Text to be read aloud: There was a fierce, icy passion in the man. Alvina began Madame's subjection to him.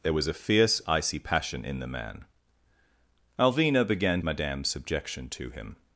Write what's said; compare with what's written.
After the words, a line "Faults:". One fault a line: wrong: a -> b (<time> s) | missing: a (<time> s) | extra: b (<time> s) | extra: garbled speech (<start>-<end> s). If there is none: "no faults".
There was a fierce, icy passion in the man. Alvina began Madame's subjection to him.
Faults:
no faults